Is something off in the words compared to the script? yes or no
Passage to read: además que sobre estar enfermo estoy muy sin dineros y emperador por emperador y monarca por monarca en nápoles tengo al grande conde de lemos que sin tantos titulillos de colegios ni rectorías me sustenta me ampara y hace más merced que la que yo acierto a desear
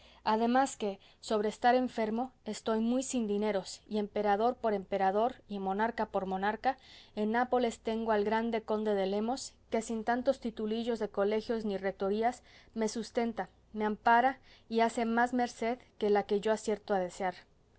no